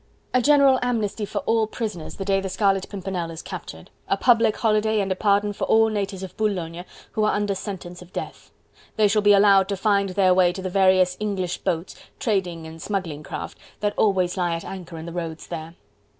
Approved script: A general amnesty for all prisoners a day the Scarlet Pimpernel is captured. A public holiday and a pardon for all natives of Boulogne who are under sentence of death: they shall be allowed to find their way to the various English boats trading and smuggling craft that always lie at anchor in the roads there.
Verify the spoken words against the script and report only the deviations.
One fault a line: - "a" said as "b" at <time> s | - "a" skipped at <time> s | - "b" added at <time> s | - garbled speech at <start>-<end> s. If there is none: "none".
- "a" said as "the" at 2.1 s